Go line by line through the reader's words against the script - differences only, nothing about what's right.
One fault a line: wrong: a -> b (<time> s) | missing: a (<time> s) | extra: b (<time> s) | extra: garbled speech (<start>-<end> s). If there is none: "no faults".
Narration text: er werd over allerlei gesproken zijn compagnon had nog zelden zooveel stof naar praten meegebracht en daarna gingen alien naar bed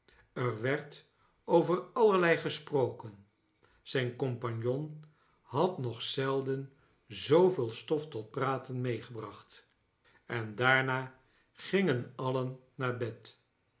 wrong: naar -> tot (8.1 s)